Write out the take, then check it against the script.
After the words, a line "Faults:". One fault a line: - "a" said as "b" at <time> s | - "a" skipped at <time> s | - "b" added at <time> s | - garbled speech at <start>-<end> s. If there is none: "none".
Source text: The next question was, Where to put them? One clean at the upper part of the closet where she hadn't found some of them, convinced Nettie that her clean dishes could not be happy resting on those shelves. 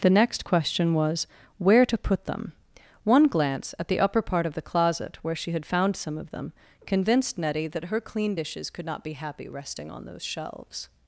The next question was, Where to put them? One glance at the upper part of the closet where she had found some of them, convinced Nettie that her clean dishes could not be happy resting on those shelves.
Faults:
- "clean" said as "glance" at 3.3 s
- "hadn't" said as "had" at 5.5 s